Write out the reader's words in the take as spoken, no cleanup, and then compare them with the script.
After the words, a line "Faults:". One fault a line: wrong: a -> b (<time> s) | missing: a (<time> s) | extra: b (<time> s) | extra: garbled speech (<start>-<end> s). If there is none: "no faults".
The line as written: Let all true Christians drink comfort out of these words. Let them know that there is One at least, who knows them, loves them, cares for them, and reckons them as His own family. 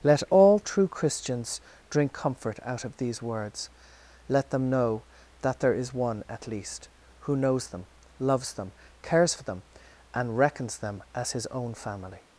Let all true Christians drink comfort out of these words. Let them know that there is One at least, who knows them, loves them, cares for them, and reckons them as His own family.
Faults:
no faults